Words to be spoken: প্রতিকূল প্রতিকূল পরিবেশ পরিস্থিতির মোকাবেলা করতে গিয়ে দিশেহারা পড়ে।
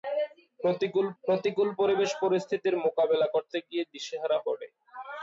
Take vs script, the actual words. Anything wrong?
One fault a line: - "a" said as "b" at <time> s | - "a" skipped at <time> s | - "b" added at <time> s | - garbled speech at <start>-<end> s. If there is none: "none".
none